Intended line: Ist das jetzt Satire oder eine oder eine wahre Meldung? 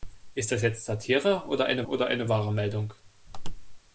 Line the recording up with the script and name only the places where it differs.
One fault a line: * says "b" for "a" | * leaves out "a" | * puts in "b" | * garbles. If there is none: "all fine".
all fine